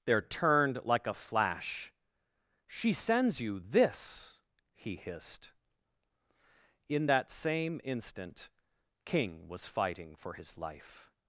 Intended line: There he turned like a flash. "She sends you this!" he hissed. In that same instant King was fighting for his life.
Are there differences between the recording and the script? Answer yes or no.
yes